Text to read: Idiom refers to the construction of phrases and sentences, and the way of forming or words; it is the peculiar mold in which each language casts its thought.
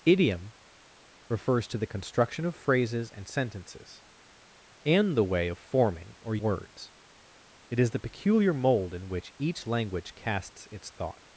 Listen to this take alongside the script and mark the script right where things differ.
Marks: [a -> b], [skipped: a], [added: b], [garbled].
Idiom refers to the construction of phrases and sentences, and the way of forming or words; it is the peculiar mold in which each language casts its thought.